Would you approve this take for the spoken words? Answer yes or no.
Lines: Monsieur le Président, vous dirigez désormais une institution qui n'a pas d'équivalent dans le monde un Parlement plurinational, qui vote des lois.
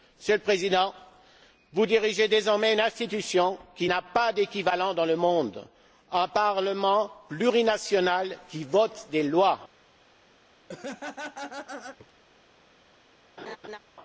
yes